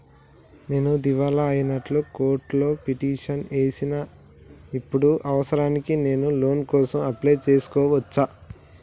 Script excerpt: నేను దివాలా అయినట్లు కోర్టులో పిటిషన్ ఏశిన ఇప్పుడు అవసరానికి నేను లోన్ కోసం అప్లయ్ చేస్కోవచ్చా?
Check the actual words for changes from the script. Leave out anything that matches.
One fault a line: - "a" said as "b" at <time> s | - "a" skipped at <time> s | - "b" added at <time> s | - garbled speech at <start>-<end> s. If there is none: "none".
none